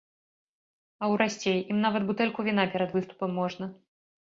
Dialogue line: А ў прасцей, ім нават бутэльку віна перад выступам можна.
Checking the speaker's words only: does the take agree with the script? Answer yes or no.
yes